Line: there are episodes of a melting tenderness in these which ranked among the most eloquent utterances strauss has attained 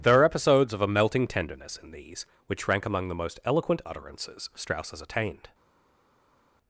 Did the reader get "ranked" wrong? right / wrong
wrong